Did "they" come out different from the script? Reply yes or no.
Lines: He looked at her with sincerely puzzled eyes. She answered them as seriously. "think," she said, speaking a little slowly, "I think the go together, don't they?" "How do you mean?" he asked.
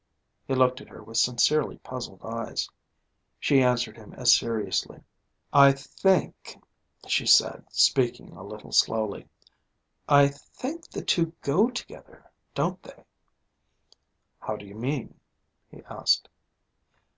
no